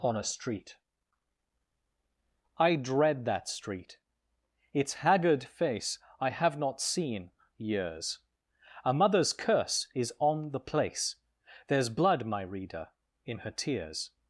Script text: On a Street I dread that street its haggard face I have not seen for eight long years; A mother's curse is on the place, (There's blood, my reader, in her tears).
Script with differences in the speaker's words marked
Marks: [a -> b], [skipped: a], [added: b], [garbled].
On a Street I dread that street its haggard face I have not seen [skipped: for eight long] years; A mother's curse is on the place, (There's blood, my reader, in her tears).